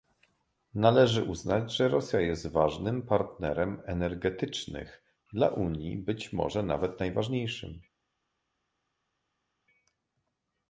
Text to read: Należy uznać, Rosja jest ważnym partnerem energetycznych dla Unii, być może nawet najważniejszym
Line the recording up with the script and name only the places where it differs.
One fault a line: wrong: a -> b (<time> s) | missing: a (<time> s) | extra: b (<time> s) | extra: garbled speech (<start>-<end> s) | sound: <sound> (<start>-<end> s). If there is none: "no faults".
extra: że (1.8 s)